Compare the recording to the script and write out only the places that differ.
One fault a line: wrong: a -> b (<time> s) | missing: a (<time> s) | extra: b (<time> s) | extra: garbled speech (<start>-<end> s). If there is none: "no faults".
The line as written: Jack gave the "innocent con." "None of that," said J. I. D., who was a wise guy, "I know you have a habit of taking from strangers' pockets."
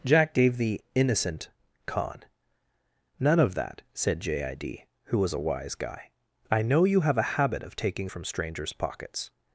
no faults